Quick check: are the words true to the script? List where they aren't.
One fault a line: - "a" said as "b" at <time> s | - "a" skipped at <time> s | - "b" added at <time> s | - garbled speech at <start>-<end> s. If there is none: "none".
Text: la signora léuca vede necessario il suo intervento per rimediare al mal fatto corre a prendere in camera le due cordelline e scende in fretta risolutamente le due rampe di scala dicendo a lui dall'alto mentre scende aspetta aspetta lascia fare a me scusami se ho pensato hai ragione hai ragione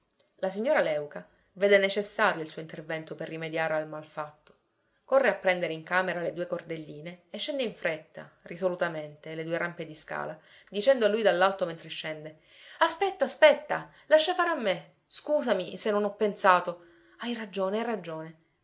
- "non" added at 15.9 s